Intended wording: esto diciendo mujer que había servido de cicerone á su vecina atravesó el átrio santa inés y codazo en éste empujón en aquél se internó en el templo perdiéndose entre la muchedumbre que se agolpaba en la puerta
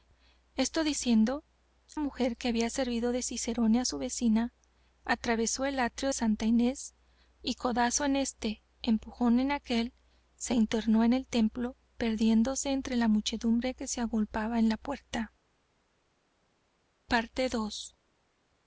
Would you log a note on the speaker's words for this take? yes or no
no